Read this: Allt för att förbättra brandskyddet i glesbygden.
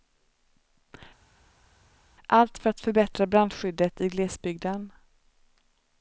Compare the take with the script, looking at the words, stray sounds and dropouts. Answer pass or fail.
pass